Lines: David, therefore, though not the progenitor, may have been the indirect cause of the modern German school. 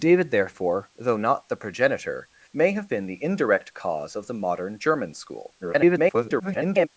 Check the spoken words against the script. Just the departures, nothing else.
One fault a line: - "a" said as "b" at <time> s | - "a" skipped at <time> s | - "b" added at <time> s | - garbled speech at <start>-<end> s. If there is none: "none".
- garbled speech at 5.6-6.9 s